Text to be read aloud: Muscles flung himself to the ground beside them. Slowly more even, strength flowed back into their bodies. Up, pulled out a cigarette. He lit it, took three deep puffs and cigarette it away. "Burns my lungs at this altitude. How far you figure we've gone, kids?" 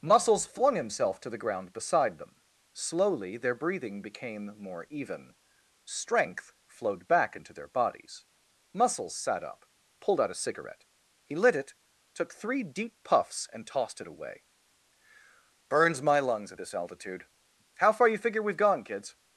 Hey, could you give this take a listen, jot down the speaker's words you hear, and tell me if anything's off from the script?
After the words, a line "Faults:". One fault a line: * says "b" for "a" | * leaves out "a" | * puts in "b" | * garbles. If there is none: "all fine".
Muscles flung himself to the ground beside them. Slowly their breathing became more even, strength flowed back into their bodies. Muscles sat up, pulled out a cigarette. He lit it, took three deep puffs and tossed it away. "Burns my lungs at this altitude. How far you figure we've gone, kids?"
Faults:
* puts in "their breathing became"
* puts in "Muscles sat"
* says "tossed" for "cigarette"